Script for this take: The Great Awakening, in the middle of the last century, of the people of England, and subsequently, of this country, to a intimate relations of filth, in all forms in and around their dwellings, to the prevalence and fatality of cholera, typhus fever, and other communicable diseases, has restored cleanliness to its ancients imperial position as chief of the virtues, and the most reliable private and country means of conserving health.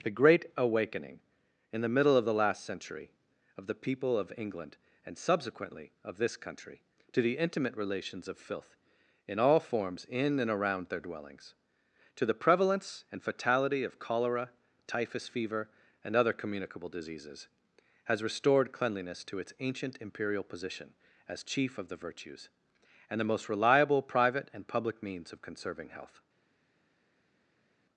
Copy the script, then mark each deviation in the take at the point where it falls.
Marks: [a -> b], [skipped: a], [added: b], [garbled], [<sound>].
The Great Awakening, in the middle of the last century, of the people of England, and subsequently, of this country, to [a -> the] intimate relations of filth, in all forms in and around their dwellings, to the prevalence and fatality of cholera, typhus fever, and other communicable diseases, has restored cleanliness to its [ancients -> ancient] imperial position as chief of the virtues, and the most reliable private and [country -> public] means of conserving health.